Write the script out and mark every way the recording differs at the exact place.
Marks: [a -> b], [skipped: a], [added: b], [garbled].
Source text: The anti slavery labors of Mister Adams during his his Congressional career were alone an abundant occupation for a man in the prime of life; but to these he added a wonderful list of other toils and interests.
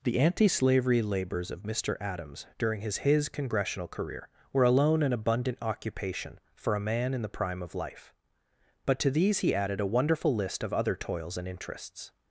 The anti slavery labors of Mister Adams during his his Congressional career were alone an abundant occupation for a man in the prime of life; but to these he added a wonderful list of other toils and interests.